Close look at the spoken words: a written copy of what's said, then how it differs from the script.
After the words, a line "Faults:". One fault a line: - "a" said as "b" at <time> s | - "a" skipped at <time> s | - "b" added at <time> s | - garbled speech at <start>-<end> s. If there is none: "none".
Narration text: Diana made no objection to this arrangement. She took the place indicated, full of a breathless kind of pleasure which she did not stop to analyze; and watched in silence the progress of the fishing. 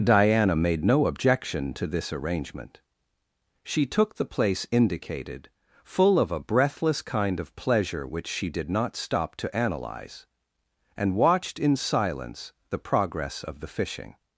Diana made no objection to this arrangement. She took the place indicated, full of a breathless kind of pleasure which she did not stop to analyze; and watched in silence the progress of the fishing.
Faults:
none